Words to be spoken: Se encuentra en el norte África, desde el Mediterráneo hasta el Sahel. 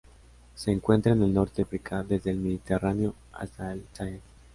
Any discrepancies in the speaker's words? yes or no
no